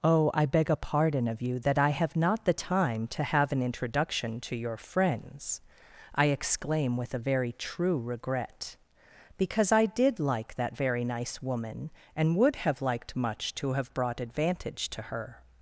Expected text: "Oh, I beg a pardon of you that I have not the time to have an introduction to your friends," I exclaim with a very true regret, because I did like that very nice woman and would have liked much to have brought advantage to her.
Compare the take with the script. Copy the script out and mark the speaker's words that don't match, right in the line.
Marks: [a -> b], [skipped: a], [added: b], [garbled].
"Oh, I beg a pardon of you that I have not the time to have an introduction to your friends," I exclaim with a very true regret, because I did like that very nice woman and would have liked much to have brought advantage to her.